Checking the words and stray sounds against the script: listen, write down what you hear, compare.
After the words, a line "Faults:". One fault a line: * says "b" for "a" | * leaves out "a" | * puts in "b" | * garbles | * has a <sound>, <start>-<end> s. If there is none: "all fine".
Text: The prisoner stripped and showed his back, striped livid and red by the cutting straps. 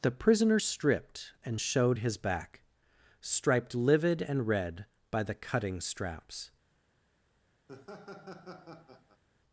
The prisoner stripped and showed his back, striped livid and red by the cutting straps.
Faults:
* has a laugh, 7.7-9.2 s